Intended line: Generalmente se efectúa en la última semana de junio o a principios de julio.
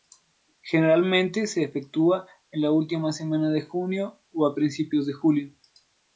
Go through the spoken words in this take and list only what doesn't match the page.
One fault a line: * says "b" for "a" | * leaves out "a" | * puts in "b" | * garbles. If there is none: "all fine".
all fine